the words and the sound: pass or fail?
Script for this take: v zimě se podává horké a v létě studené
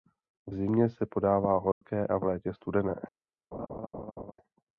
fail